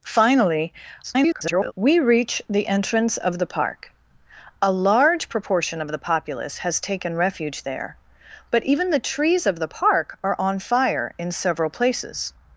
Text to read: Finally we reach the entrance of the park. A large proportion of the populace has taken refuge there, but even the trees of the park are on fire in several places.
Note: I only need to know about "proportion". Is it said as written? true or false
true